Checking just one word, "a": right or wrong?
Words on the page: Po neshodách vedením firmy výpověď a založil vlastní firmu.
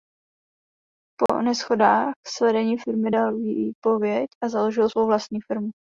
right